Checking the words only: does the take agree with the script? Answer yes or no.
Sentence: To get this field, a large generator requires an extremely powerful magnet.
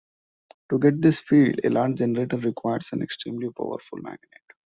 yes